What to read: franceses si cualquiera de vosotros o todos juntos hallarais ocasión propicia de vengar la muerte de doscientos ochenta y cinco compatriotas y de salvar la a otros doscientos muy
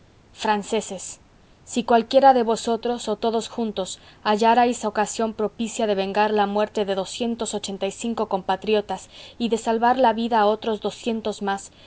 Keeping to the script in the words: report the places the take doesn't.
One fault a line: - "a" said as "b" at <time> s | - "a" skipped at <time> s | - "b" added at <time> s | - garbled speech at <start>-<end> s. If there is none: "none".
- "vida" added at 10.1 s
- "muy" said as "más" at 11.4 s